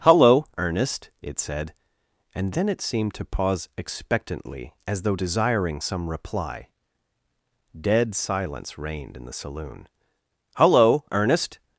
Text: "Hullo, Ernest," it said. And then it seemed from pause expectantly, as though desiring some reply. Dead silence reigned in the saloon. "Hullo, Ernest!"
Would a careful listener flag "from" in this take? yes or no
yes